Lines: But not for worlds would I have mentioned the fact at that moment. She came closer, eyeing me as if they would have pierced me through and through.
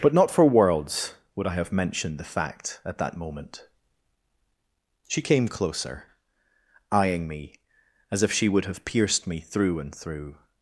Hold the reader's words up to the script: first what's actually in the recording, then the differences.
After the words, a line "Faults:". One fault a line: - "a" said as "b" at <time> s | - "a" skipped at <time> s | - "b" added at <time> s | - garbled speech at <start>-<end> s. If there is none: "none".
But not for worlds would I have mentioned the fact at that moment. She came closer, eyeing me as if she would have pierced me through and through.
Faults:
- "they" said as "she" at 8.3 s